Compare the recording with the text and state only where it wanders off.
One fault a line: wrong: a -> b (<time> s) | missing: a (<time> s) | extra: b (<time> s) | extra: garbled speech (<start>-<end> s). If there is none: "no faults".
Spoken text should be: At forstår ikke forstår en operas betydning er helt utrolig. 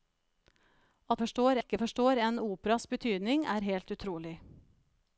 no faults